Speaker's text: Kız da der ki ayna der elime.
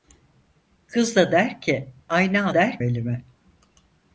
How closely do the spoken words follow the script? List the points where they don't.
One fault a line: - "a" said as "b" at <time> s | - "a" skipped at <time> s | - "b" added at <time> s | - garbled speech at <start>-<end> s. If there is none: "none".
none